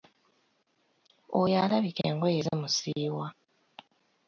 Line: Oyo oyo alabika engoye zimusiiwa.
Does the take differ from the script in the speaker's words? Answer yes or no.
yes